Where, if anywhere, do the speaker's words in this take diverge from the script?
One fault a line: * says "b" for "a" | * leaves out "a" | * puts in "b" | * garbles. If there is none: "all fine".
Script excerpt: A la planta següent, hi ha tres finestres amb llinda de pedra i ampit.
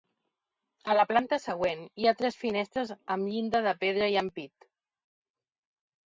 all fine